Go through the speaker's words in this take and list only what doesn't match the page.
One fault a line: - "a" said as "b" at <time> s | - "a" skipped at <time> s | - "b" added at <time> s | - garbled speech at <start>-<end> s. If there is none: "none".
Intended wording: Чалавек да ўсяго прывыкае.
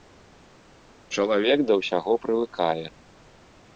none